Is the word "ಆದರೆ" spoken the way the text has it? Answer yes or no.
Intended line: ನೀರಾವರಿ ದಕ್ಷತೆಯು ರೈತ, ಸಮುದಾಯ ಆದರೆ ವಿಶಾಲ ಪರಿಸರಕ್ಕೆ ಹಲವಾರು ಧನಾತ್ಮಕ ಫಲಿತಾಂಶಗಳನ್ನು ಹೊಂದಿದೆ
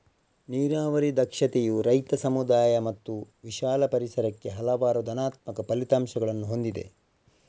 no